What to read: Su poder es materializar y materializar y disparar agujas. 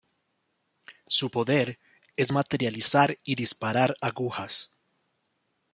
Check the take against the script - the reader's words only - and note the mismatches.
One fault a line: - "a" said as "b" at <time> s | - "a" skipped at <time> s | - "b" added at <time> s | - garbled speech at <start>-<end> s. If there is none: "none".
- "materializar y" skipped at 3.3 s